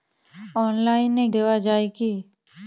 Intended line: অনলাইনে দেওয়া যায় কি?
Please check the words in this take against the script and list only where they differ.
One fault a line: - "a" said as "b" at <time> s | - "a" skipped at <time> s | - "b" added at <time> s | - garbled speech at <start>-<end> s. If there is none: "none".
none